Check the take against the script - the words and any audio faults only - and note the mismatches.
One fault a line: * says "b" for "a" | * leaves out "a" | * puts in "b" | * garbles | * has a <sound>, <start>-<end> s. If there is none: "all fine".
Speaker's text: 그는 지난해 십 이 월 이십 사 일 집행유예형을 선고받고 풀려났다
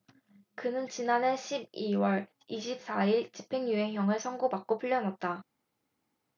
all fine